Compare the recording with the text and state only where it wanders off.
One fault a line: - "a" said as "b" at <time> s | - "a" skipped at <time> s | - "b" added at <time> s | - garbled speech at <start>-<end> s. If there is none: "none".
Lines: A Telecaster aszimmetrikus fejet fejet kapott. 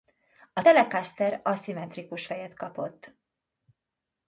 - "fejet" skipped at 2.5 s